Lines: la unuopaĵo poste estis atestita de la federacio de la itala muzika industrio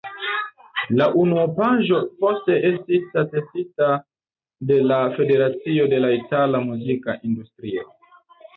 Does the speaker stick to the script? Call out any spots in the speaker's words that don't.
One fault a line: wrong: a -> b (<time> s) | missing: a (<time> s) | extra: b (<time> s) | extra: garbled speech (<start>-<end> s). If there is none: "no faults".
no faults